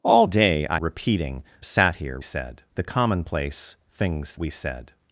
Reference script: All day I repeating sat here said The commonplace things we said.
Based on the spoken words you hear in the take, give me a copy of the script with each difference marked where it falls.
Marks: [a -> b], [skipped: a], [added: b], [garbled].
All day I repeating sat here said The commonplace things we said.